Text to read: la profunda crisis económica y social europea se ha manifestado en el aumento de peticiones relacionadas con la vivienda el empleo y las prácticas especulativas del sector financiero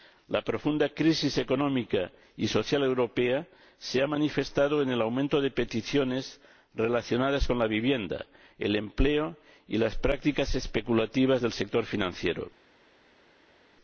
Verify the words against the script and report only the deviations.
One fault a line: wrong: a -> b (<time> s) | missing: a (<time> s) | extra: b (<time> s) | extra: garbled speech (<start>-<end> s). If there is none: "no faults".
no faults